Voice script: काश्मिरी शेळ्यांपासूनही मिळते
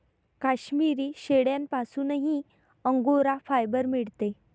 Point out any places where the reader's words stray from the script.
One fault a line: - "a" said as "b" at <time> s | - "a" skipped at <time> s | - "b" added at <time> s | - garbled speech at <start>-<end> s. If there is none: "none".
- "अंगोरा फायबर" added at 2.9 s